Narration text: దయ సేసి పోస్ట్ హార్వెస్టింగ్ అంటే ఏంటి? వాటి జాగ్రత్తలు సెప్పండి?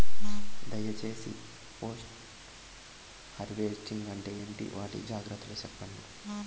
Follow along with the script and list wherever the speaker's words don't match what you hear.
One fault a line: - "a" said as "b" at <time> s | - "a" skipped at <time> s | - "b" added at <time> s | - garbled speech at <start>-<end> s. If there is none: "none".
none